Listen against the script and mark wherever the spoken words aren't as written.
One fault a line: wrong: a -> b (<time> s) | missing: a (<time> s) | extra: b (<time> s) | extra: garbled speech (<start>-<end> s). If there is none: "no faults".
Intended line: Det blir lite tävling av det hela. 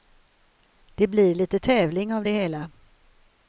no faults